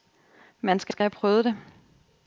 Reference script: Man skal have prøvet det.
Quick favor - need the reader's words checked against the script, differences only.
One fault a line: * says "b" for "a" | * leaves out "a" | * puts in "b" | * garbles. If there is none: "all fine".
* puts in "skal"